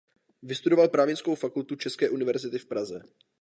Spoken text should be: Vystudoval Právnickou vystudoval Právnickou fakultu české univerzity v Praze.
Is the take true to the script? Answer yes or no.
no